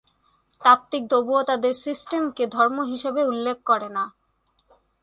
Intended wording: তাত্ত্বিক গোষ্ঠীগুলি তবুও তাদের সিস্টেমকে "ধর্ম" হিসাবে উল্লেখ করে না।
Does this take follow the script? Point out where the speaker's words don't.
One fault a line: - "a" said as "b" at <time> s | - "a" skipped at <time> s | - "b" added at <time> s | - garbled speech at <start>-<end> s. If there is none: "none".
- "গোষ্ঠীগুলি" skipped at 1.0 s